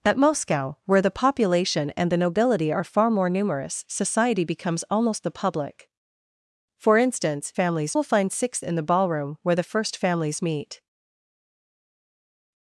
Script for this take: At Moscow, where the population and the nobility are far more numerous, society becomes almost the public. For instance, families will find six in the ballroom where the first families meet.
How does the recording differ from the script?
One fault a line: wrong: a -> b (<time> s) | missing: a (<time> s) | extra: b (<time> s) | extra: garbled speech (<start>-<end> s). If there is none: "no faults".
no faults